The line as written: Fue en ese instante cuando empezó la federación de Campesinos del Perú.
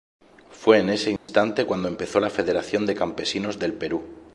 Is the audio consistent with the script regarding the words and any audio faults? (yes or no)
no